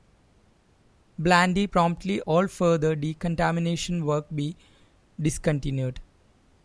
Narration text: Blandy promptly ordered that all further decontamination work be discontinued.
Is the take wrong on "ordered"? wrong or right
wrong